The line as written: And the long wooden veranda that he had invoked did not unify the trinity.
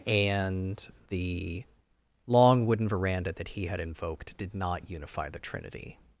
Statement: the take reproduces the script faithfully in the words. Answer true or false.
true